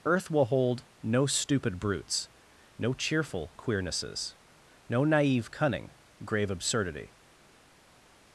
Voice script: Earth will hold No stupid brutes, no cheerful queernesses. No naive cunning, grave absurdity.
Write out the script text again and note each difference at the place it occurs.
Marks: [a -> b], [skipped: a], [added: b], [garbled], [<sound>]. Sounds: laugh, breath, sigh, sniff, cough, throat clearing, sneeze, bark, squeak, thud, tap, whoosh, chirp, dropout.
Earth will hold No stupid brutes, no cheerful queernesses. No naive cunning, grave absurdity.